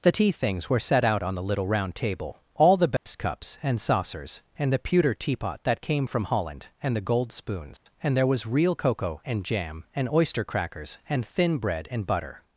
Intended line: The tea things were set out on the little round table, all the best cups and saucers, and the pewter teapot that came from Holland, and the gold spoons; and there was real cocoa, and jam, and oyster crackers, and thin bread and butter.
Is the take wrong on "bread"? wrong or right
right